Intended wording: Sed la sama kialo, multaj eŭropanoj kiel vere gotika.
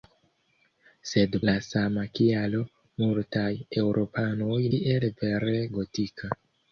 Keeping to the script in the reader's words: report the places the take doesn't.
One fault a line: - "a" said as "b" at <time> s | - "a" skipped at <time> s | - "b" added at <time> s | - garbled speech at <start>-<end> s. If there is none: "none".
none